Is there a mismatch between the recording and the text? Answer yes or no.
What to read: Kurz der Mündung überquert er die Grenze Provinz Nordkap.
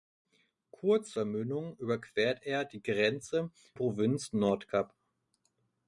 no